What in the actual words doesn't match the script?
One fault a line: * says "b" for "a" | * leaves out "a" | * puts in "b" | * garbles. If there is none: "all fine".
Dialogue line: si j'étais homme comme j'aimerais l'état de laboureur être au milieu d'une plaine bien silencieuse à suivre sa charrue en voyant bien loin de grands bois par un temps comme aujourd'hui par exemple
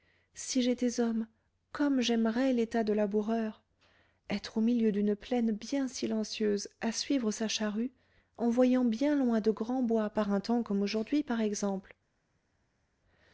all fine